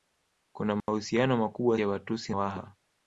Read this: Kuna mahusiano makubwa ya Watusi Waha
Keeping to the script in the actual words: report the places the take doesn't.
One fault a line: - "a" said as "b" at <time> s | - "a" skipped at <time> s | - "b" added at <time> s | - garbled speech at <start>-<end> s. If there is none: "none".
none